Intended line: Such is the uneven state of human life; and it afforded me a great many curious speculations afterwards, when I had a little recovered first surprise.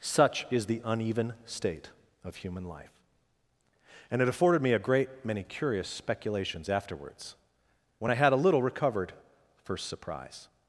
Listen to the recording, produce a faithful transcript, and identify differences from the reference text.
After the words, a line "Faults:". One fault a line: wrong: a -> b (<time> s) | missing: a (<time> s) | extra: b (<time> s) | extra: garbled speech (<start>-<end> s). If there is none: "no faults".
Such is the uneven state of human life; and it afforded me a great many curious speculations afterwards, when I had a little recovered first surprise.
Faults:
no faults